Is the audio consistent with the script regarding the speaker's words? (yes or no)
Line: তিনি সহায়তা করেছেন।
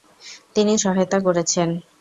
yes